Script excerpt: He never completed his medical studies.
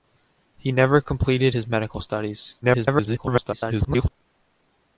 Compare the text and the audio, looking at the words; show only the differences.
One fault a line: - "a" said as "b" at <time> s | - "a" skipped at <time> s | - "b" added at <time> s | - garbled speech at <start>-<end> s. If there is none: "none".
- garbled speech at 2.6-4.1 s